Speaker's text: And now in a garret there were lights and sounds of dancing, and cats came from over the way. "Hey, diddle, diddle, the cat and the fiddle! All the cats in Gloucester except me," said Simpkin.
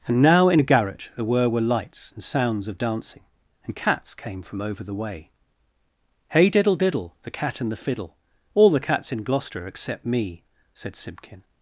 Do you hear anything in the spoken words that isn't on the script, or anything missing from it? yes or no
yes